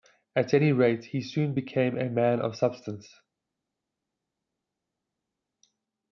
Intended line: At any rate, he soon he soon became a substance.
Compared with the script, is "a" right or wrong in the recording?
wrong